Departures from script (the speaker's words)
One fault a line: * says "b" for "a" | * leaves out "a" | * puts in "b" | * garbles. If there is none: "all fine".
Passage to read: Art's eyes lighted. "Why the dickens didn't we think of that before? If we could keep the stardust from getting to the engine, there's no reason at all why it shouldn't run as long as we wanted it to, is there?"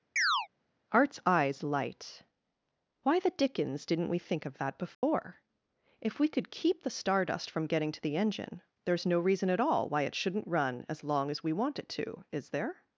* says "light" for "lighted"
* says "want" for "wanted"